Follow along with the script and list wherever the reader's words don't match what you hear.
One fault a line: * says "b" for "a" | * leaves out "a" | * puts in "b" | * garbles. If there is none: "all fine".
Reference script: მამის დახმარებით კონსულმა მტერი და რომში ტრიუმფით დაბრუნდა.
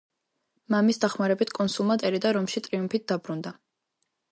all fine